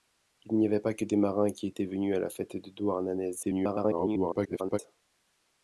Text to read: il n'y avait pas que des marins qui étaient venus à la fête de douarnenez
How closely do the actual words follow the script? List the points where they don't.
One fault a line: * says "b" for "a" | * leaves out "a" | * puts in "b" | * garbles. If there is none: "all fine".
* garbles